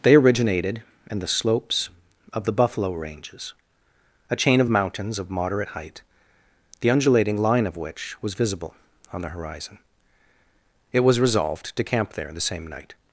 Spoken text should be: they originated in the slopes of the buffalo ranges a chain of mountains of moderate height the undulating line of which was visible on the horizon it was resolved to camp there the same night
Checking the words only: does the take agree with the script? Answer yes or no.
yes